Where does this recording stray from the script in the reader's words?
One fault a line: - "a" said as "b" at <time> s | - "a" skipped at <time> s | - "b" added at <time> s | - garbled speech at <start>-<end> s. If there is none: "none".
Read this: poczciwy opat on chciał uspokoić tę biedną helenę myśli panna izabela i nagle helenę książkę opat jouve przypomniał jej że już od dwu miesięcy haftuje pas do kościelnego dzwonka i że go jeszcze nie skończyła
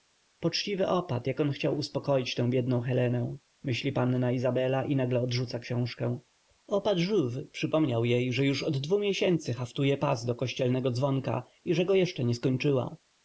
- "jak" added at 1.3 s
- "helenę" said as "odrzuca" at 5.2 s